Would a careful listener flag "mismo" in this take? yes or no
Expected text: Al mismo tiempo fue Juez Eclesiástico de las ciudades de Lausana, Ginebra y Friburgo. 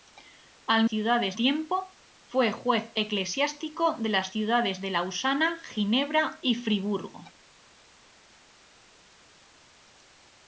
yes